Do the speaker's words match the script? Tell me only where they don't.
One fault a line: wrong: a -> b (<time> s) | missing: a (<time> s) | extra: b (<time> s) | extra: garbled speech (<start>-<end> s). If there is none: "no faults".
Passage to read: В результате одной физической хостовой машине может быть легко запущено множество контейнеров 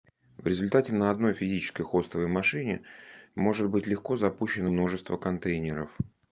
extra: на (0.9 s)